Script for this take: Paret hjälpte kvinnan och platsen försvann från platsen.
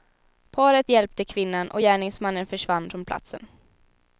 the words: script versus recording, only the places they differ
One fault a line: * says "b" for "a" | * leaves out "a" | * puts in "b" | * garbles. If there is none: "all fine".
* says "gärningsmannen" for "platsen"